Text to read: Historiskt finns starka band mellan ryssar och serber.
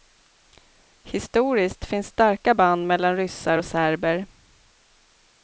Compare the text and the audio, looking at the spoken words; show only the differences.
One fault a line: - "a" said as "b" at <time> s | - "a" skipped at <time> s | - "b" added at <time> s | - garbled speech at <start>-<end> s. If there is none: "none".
none